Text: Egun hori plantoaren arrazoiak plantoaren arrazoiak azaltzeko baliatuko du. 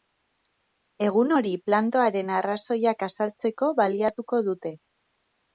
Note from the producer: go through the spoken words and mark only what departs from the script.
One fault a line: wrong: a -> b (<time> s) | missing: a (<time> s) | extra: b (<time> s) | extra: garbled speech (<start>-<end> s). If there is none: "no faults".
missing: plantoaren arrazoiak (3.0 s)
wrong: du -> dute (4.5 s)